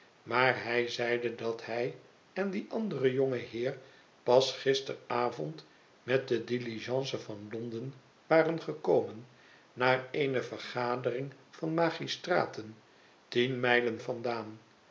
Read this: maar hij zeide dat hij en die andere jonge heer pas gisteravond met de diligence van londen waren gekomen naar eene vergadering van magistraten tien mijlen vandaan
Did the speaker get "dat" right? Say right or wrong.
right